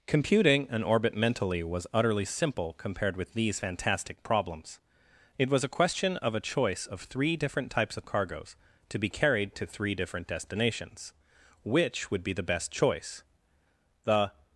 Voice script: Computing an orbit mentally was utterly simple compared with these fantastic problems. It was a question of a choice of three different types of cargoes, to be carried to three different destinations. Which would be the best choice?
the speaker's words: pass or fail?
fail